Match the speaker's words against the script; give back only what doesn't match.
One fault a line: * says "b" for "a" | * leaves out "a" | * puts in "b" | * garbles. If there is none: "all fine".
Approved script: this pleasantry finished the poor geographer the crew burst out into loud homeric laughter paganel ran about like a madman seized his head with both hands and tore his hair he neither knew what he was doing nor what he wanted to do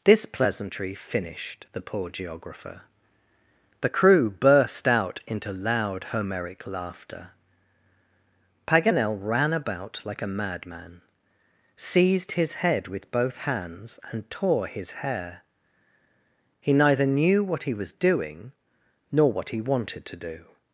all fine